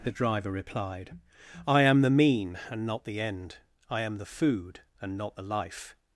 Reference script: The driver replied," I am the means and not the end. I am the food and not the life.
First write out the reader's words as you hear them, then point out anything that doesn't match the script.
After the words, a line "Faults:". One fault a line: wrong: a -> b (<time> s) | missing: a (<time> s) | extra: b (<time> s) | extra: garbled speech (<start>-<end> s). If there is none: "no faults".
The driver replied," I am the mean and not the end. I am the food and not the life.
Faults:
wrong: means -> mean (2.1 s)